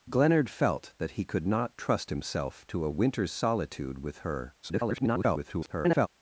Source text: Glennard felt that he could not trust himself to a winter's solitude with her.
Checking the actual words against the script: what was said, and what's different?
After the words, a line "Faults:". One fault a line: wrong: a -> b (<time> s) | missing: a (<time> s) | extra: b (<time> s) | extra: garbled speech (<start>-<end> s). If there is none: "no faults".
Glennard felt that he could not trust himself to a winter's solitude with her. [garbled]
Faults:
extra: garbled speech (4.6-6.1 s)